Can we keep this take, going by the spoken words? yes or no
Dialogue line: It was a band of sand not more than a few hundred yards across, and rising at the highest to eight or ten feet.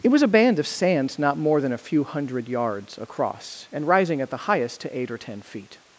yes